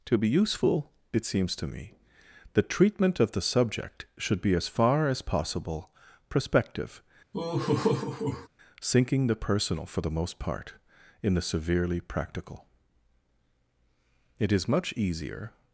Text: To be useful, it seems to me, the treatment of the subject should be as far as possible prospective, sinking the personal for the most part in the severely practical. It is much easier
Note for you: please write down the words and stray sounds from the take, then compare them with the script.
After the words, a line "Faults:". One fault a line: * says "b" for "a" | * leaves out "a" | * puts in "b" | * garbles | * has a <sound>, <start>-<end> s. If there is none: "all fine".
To be useful, it seems to me, the treatment of the subject should be as far as possible prospective, sinking the personal for the most part in the severely practical. It is much easier
Faults:
* has a laugh, 7.3-8.5 s